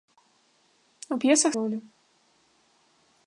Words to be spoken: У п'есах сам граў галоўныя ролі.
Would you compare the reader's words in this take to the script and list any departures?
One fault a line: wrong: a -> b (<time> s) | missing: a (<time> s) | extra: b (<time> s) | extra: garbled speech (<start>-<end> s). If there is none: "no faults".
missing: сам граў галоўныя (1.5 s)